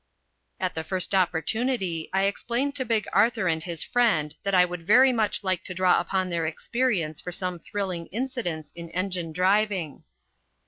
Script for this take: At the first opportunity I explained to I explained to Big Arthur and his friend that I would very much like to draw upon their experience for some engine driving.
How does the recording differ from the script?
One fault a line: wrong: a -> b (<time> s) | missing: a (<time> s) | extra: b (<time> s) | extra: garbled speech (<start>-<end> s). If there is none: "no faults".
missing: I explained to (2.9 s)
extra: thrilling incidents in (7.6 s)